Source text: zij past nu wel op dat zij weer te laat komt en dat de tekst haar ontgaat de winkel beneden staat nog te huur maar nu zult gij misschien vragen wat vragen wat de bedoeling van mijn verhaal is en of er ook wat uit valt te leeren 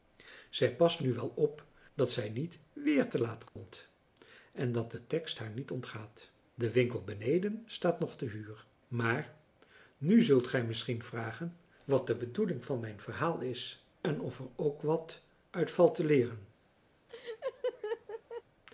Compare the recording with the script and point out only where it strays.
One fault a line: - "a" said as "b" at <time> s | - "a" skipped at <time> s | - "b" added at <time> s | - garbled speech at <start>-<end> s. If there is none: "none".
- "niet" added at 2.3 s
- "niet" added at 5.5 s
- "vragen wat" skipped at 12.1 s